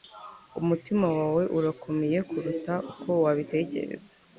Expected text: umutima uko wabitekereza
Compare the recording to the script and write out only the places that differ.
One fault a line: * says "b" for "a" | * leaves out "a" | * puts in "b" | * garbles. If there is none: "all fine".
* puts in "wawe urakomeye kuruta"